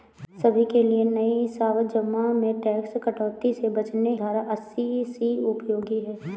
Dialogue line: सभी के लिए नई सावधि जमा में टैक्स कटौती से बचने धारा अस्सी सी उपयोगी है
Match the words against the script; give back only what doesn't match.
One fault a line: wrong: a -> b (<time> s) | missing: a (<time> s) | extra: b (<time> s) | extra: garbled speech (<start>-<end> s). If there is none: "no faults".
no faults